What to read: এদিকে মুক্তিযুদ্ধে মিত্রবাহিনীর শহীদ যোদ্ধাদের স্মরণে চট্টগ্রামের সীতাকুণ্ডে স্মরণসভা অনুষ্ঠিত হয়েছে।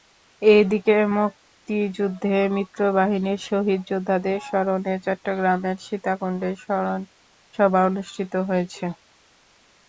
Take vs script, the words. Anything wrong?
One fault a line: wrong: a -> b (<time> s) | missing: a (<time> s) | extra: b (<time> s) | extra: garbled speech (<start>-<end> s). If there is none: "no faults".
no faults